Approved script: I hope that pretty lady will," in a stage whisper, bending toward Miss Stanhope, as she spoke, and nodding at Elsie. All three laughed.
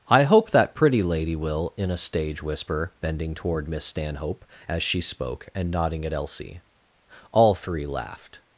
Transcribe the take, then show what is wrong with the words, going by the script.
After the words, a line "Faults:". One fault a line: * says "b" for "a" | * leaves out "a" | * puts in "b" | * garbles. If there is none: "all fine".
I hope that pretty lady will," in a stage whisper, bending toward Miss Stanhope, as she spoke, and nodding at Elsie. All three laughed.
Faults:
all fine